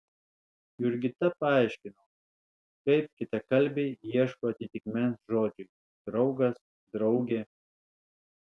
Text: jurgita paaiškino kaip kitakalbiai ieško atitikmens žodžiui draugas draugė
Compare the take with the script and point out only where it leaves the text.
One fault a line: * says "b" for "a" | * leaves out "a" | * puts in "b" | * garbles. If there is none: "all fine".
all fine